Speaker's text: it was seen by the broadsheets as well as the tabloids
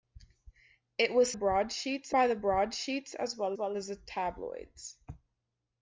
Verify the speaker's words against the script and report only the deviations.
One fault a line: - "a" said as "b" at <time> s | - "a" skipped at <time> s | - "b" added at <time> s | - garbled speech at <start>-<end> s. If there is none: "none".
- "seen" said as "broadsheets" at 1.3 s
- "well" added at 3.6 s